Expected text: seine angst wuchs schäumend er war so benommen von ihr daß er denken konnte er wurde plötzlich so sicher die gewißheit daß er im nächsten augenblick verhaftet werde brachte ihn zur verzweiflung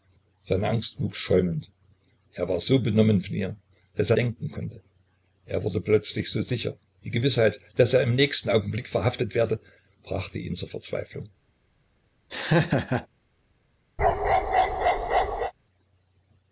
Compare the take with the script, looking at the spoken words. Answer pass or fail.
pass